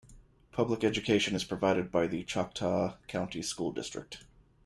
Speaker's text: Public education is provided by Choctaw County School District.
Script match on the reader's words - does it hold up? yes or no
no